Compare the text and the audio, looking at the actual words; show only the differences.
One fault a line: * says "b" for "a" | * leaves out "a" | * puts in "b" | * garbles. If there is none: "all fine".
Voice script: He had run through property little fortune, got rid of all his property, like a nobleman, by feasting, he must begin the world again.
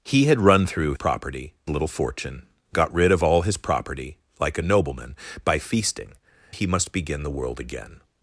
all fine